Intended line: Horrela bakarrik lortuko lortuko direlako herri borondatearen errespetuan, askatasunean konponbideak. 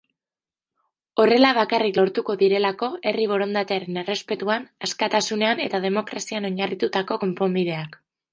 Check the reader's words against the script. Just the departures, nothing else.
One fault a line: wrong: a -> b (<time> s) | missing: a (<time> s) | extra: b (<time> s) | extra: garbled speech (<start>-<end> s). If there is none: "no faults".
missing: lortuko (2.3 s)
extra: eta demokrazian oinarritutako (5.7 s)